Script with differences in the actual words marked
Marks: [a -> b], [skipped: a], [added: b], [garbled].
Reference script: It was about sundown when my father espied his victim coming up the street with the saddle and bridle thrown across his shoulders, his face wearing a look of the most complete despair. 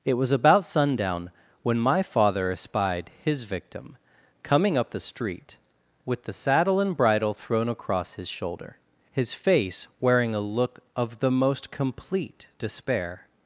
It was about sundown when my father espied his victim coming up the street with the saddle and bridle thrown across his [shoulders, -> shoulder] his face wearing a look of the most complete despair.